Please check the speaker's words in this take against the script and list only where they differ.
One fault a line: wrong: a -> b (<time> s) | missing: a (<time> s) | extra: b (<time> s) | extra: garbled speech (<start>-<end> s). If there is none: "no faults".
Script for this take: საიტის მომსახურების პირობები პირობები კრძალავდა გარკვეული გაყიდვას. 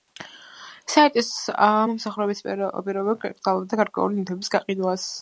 missing: პირობები (3.2 s)
extra: ნივთების (4.2 s)